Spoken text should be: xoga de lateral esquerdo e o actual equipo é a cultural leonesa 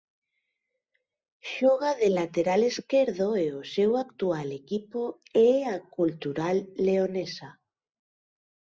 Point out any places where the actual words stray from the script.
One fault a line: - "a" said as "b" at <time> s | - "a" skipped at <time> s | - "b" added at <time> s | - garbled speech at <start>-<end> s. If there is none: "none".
- "seu" added at 3.8 s